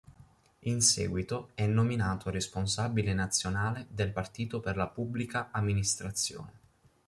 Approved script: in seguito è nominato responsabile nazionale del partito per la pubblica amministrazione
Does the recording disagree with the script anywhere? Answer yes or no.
no